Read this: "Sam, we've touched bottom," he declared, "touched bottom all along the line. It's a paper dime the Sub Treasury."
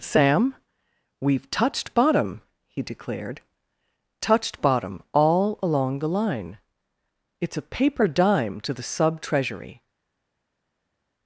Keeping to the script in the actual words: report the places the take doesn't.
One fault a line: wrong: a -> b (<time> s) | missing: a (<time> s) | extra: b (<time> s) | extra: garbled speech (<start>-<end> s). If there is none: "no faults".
extra: to (8.6 s)